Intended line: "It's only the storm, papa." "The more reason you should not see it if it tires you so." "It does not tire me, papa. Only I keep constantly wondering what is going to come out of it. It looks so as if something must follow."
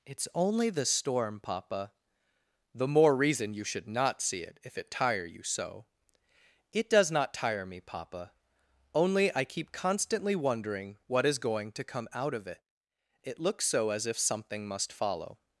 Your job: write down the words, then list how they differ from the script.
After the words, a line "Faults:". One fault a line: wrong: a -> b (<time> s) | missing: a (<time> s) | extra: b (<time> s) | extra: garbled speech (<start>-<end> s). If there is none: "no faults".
"It's only the storm, papa." "The more reason you should not see it if it tire you so." "It does not tire me, papa. Only I keep constantly wondering what is going to come out of it. It looks so as if something must follow."
Faults:
wrong: tires -> tire (4.9 s)